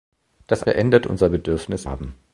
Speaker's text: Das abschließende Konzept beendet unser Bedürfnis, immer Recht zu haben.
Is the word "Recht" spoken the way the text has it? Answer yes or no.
no